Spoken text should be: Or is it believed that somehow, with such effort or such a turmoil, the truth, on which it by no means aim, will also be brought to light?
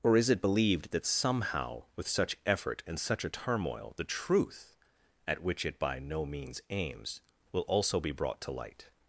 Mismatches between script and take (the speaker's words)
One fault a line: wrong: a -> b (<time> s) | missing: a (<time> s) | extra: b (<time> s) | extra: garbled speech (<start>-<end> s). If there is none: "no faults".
wrong: or -> and (2.9 s)
wrong: on -> at (5.3 s)
wrong: aim -> aims (6.7 s)